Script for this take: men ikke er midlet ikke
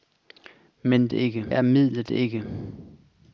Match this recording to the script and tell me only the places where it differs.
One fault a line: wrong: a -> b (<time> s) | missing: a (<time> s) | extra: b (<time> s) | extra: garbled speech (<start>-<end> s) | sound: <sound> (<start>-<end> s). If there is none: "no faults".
no faults